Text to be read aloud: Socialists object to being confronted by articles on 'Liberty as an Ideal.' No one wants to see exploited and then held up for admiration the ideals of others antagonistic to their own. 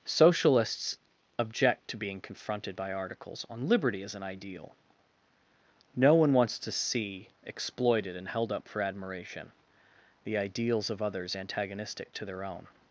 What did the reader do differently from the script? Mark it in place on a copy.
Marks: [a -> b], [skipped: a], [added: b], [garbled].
Socialists object to being confronted by articles on 'Liberty as an Ideal.' No one wants to see exploited and [skipped: then] held up for admiration the ideals of others antagonistic to their own.